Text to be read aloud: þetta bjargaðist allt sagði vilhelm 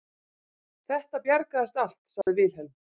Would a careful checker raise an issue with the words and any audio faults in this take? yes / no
yes